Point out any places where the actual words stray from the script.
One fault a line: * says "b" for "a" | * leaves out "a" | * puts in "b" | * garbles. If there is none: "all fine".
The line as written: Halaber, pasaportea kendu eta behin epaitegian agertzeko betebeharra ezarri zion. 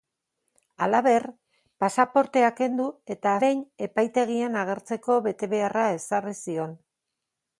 all fine